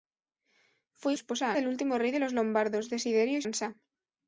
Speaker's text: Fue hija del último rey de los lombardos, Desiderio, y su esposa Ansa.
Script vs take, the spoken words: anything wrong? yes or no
yes